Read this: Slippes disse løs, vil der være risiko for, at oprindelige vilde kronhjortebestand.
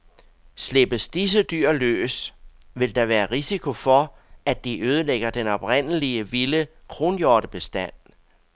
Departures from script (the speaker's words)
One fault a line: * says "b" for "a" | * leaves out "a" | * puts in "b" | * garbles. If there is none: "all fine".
* puts in "dyr"
* puts in "de ødelægger den"